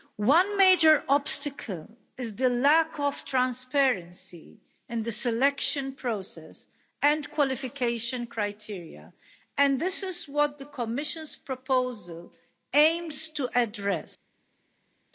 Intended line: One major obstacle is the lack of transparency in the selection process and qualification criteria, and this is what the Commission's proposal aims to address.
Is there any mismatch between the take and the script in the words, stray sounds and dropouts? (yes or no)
no